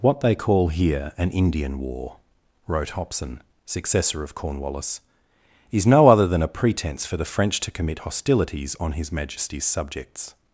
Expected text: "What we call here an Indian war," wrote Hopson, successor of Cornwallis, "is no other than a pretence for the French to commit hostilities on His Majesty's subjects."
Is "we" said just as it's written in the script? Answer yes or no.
no